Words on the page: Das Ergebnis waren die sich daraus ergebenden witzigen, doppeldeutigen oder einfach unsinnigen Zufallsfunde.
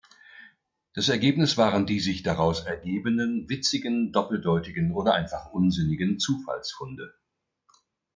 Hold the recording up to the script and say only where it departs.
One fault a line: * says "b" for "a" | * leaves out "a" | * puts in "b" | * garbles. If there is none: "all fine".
all fine